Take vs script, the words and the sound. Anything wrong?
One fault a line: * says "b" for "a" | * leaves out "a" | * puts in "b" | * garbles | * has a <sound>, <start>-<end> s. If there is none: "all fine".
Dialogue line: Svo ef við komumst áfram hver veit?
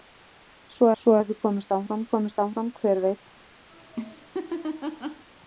* puts in "svo"
* puts in "komumst áfram"
* has a laugh, 3.7-5.3 s